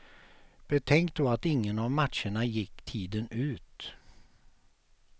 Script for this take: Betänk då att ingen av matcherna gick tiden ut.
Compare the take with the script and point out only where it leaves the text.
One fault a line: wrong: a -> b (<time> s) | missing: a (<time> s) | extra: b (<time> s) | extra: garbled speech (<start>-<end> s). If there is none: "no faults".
no faults